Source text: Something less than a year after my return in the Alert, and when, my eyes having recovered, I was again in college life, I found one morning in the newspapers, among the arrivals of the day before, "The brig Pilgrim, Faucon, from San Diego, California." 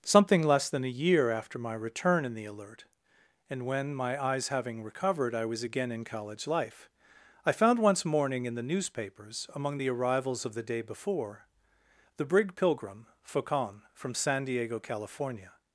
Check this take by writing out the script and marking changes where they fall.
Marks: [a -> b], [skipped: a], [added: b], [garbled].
Something less than a year after my return in the Alert, and when, my eyes having recovered, I was again in college life, I found [one -> once] morning in the newspapers, among the arrivals of the day before, "The brig Pilgrim, Faucon, from San Diego, California."